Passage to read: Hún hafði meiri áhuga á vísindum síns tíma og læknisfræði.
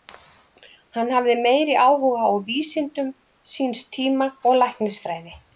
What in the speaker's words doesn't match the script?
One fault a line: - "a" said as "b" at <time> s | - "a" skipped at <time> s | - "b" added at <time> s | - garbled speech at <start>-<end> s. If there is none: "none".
- "Hún" said as "Hann" at 1.0 s